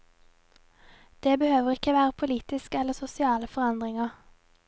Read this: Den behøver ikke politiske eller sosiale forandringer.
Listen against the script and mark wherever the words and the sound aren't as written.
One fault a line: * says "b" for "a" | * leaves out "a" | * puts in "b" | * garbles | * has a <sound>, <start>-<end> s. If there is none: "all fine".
* says "Det" for "Den"
* puts in "være"